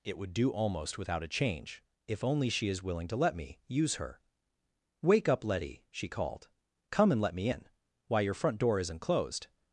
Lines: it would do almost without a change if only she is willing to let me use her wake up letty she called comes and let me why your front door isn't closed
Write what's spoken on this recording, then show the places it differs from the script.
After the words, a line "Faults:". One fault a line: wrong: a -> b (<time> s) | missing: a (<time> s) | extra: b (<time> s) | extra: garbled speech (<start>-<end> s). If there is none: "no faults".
it would do almost without a change if only she is willing to let me use her wake up letty she called come and let me in why your front door isn't closed
Faults:
wrong: comes -> come (6.9 s)
extra: in (7.5 s)